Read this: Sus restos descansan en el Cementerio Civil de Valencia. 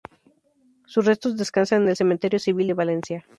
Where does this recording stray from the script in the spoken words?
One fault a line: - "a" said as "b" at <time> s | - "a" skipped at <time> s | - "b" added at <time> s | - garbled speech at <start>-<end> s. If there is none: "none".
none